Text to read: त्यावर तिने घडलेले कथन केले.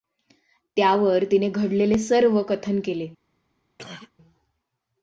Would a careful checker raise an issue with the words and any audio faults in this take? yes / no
yes